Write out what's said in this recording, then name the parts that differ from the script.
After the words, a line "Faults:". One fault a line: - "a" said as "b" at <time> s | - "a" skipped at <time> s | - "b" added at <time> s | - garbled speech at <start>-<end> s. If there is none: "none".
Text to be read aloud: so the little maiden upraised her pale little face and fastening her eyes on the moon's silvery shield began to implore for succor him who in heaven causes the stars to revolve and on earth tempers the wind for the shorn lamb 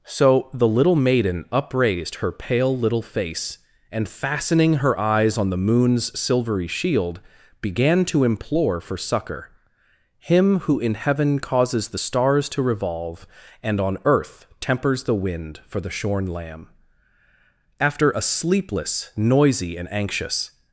so the little maiden upraised her pale little face and fastening her eyes on the moon's silvery shield began to implore for succor him who in heaven causes the stars to revolve and on earth tempers the wind for the shorn lamb after a sleepless noisy and anxious
Faults:
- "after a sleepless noisy and anxious" added at 17.8 s